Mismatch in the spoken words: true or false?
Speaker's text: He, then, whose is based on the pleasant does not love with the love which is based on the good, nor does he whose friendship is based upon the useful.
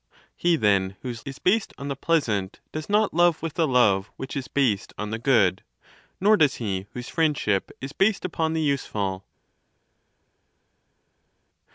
false